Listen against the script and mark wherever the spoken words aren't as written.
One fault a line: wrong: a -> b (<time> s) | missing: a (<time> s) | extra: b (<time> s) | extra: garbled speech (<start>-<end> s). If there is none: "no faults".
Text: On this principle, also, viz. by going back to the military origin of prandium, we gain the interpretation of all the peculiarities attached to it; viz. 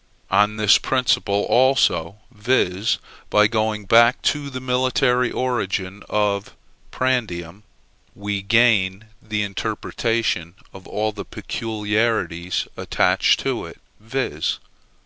no faults